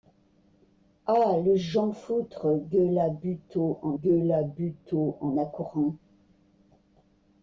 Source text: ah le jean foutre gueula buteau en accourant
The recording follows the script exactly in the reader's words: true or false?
false